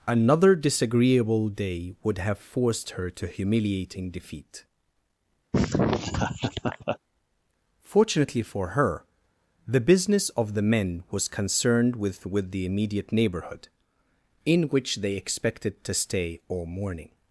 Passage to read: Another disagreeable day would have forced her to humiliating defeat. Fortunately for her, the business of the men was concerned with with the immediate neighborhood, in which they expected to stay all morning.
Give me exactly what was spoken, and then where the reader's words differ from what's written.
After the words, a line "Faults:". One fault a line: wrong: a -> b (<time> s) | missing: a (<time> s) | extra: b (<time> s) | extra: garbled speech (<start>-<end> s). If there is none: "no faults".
Another disagreeable day would have forced her to humiliating defeat. Fortunately for her, the business of the men was concerned with with the immediate neighborhood, in which they expected to stay all morning.
Faults:
no faults